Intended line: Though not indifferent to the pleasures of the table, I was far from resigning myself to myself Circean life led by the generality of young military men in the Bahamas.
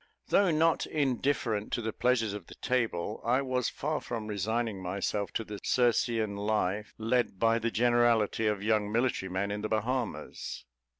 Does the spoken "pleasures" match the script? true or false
true